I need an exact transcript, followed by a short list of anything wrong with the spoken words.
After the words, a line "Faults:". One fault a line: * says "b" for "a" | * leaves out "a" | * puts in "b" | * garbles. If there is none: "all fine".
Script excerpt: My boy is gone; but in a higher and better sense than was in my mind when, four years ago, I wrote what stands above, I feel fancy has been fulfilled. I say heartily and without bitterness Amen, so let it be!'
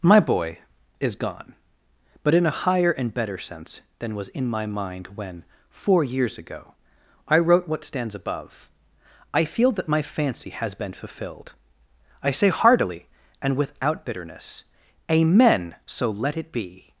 My boy is gone; but in a higher and better sense than was in my mind when, four years ago, I wrote what stands above, I feel that my fancy has been fulfilled. I say heartily and without bitterness Amen, so let it be!'
Faults:
* puts in "that my"